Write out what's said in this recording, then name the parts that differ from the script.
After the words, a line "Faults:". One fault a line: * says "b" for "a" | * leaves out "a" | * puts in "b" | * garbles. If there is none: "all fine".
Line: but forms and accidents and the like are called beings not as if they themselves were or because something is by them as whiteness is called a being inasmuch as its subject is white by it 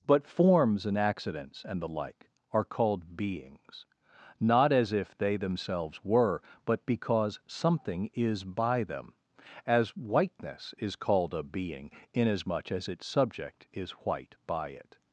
but forms and accidents and the like are called beings not as if they themselves were but because something is by them as whiteness is called a being inasmuch as its subject is white by it
Faults:
* says "but" for "or"